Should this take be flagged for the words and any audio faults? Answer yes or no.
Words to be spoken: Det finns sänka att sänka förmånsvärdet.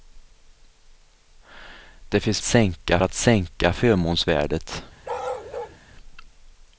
yes